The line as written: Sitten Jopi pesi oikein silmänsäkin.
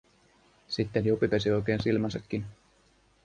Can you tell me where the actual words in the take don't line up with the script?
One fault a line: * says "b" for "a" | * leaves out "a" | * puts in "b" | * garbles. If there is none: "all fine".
all fine